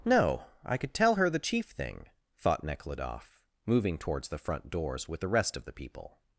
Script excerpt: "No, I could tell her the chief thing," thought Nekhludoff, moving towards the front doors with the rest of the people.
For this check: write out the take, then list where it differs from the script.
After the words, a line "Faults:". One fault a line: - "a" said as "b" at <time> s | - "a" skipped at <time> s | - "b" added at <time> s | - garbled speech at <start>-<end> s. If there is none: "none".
"No, I could tell her the chief thing," thought Nekhludoff, moving towards the front doors with the rest of the people.
Faults:
none